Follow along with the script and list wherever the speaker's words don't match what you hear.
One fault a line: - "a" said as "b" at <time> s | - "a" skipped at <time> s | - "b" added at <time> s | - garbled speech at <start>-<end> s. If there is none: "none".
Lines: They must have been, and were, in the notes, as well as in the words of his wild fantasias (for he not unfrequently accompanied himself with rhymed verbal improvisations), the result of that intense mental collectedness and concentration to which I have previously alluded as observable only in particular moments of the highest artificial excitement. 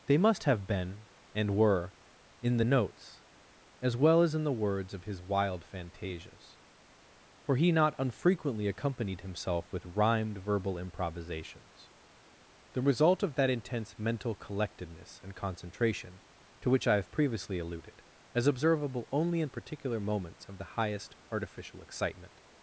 none